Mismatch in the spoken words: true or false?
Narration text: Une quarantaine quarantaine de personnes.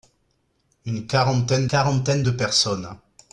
false